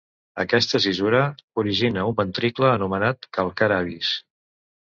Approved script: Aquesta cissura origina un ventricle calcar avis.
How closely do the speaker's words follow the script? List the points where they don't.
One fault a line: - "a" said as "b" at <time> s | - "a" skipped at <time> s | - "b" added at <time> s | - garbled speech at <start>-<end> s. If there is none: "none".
- "anomenat" added at 2.7 s